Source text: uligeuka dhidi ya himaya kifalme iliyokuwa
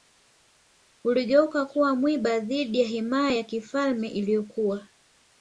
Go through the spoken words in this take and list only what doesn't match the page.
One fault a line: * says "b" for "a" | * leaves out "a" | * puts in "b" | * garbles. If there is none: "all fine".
* puts in "kuwa mwiba"
* puts in "ya"